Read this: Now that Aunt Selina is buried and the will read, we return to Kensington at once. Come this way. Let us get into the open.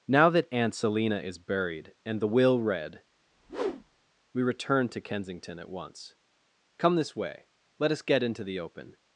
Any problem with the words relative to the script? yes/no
no